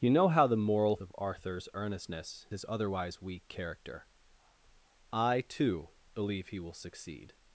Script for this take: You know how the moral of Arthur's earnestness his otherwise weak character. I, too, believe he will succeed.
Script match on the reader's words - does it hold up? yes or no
yes